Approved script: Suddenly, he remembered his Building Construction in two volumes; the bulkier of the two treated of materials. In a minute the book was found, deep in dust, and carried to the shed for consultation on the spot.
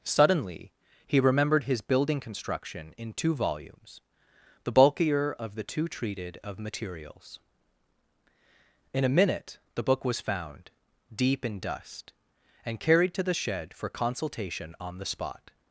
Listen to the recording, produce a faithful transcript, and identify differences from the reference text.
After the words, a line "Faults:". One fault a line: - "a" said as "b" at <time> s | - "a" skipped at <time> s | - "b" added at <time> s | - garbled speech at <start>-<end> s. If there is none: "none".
Suddenly, he remembered his Building Construction in two volumes; the bulkier of the two treated of materials. In a minute the book was found, deep in dust, and carried to the shed for consultation on the spot.
Faults:
none